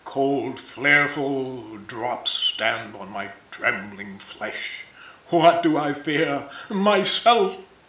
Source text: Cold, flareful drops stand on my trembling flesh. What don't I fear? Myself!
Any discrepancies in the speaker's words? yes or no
yes